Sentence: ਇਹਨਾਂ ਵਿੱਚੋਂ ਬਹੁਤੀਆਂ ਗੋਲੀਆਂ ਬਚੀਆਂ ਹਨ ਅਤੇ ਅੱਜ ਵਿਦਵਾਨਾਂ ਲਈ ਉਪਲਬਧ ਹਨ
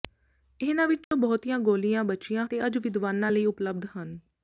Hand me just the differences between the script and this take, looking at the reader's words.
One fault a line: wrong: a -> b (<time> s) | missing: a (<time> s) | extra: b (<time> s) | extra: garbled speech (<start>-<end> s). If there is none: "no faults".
missing: ਹਨ (2.5 s)